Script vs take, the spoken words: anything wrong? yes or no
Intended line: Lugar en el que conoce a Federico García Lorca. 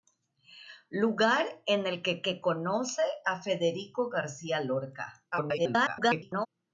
yes